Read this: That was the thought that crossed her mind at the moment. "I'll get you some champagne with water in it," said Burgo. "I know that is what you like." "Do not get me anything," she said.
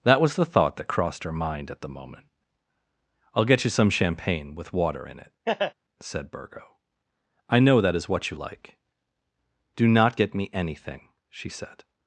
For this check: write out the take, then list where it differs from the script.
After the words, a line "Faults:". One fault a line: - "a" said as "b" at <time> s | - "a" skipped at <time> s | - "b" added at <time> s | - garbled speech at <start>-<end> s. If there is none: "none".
That was the thought that crossed her mind at the moment. "I'll get you some champagne with water in it," said Burgo. "I know that is what you like." "Do not get me anything," she said.
Faults:
none